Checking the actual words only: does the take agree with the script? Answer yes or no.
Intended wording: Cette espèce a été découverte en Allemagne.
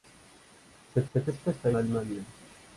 no